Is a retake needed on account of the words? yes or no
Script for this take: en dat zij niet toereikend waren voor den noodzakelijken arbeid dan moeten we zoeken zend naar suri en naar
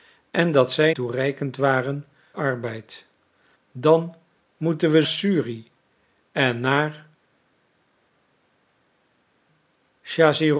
yes